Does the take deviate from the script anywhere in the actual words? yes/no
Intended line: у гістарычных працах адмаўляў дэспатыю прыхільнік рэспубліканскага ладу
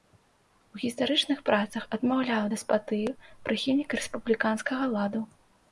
no